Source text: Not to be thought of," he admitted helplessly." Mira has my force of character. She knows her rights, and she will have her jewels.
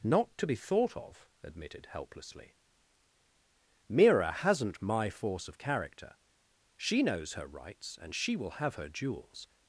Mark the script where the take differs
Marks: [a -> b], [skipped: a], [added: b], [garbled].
Not to be thought of," [skipped: he] admitted helplessly." Mira [has -> hasn't] my force of character. She knows her rights, and she will have her jewels.